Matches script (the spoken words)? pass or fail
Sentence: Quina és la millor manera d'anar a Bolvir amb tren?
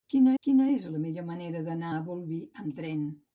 fail